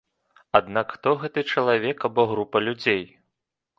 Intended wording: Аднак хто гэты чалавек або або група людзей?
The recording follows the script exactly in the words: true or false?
false